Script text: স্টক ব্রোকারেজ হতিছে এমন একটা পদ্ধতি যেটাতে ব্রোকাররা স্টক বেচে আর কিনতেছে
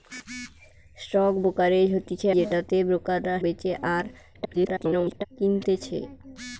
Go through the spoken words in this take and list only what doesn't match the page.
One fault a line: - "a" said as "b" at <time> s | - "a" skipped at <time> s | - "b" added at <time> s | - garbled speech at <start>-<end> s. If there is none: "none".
- "এমন একটা পদ্ধতি" skipped at 2.3 s
- "স্টক" skipped at 3.4 s
- garbled speech at 4.3-5.3 s